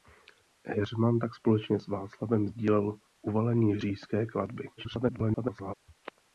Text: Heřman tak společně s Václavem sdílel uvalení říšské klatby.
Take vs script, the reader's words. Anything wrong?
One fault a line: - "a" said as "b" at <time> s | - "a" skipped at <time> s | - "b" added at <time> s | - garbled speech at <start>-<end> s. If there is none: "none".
- garbled speech at 4.8-5.7 s